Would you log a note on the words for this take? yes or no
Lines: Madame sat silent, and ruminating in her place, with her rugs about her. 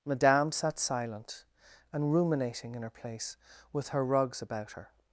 no